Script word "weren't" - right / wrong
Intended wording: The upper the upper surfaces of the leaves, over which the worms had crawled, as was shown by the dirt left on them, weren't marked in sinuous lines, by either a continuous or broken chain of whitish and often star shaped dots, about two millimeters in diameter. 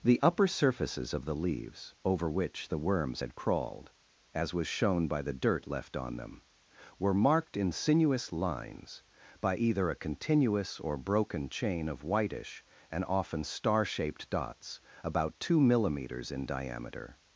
wrong